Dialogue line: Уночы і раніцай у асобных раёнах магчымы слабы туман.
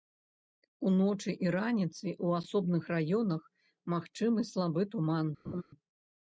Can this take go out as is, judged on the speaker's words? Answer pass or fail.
pass